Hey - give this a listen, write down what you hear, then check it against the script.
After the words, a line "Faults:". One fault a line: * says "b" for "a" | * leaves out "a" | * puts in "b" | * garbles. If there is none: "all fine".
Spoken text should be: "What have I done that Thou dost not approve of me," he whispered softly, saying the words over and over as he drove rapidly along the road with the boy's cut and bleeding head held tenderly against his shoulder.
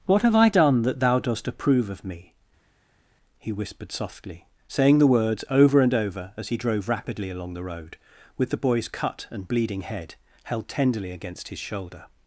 "What have I done that Thou dost approve of me," he whispered softly, saying the words over and over as he drove rapidly along the road with the boy's cut and bleeding head held tenderly against his shoulder.
Faults:
* leaves out "not"